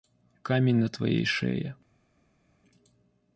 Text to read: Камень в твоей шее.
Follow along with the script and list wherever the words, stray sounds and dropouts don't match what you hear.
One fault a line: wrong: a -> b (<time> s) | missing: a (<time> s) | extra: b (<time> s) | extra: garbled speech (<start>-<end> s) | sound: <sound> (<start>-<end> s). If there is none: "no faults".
wrong: в -> на (0.8 s)